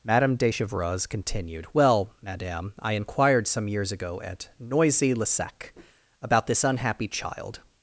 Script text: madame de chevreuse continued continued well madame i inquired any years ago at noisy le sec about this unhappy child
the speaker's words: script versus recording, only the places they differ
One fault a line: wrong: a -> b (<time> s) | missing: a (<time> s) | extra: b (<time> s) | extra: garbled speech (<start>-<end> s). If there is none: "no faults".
missing: continued (1.7 s)
wrong: any -> some (3.5 s)